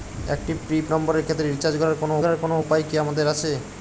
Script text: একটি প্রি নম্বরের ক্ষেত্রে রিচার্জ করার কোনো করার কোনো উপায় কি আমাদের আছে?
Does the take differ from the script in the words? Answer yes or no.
no